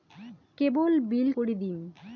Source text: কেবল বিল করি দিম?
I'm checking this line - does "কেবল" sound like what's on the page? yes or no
yes